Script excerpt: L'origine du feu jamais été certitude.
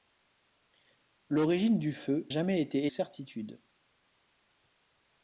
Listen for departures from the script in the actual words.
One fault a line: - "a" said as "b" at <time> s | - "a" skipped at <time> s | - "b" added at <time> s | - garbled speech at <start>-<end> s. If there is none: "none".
none